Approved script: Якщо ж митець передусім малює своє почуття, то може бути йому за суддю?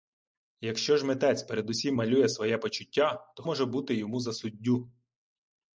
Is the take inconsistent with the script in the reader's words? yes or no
no